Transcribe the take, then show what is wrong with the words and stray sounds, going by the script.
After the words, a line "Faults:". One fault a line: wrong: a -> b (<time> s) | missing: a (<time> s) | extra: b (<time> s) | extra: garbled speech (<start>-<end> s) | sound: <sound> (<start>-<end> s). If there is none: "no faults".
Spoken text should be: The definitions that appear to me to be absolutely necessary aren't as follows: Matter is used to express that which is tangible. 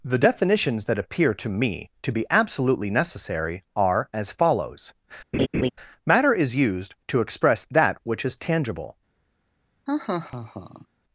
The definitions that appear to me to be absolutely necessary are as follows: Matter is used to express that which is tangible.
Faults:
wrong: aren't -> are (3.8 s)
sound: laugh (5.3-5.7 s)
sound: laugh (9.9-10.9 s)